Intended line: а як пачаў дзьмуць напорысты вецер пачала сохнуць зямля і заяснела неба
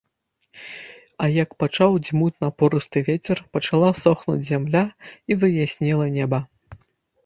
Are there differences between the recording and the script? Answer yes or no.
no